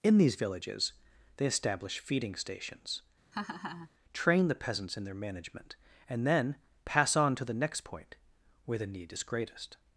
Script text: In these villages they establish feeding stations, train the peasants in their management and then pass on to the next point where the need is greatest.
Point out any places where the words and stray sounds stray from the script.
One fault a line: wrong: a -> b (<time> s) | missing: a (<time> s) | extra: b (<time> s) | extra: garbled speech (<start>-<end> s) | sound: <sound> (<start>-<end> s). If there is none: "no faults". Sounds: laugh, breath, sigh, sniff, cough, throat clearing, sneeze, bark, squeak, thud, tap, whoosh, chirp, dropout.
sound: laugh (3.3-3.9 s)